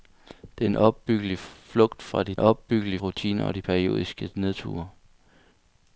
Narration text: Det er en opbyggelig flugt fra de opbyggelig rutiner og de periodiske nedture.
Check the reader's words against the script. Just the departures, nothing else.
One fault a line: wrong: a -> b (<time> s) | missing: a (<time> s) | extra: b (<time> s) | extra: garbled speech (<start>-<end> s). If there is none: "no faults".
no faults